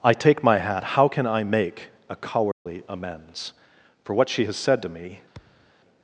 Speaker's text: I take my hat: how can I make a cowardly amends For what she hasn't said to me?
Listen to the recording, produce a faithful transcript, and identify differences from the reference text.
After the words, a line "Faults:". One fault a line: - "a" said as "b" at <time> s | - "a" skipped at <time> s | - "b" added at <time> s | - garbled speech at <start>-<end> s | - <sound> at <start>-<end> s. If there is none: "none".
I take my hat: how can I make a cowardly amends For what she has said to me?
Faults:
- dropout at 2.5-2.7 s
- "hasn't" said as "has" at 4.5 s
- thud at 5.3-5.7 s